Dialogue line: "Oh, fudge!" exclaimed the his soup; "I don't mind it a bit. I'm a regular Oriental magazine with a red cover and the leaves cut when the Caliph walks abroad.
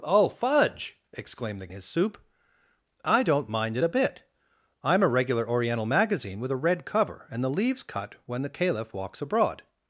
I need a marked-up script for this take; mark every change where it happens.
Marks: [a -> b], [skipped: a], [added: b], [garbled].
"Oh, fudge!" exclaimed the his soup; "I don't mind it a bit. I'm a regular Oriental magazine with a red cover and the leaves cut when the Caliph walks abroad.